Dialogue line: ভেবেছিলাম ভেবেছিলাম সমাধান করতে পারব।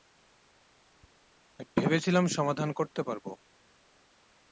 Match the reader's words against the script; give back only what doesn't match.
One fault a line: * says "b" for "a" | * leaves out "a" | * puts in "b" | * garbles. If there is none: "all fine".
* leaves out "ভেবেছিলাম"